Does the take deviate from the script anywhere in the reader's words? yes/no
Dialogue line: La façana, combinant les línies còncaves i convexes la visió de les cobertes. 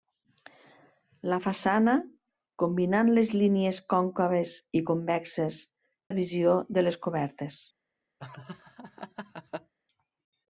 no